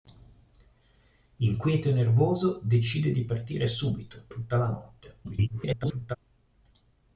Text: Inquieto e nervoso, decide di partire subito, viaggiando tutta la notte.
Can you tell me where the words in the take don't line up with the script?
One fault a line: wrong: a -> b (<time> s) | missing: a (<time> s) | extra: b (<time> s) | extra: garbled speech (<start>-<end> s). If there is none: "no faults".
missing: viaggiando (4.3 s)
extra: garbled speech (5.2-6.2 s)